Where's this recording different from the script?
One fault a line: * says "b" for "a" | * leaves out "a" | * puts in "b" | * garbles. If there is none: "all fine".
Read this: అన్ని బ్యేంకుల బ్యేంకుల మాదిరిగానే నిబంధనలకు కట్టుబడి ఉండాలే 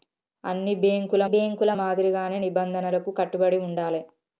all fine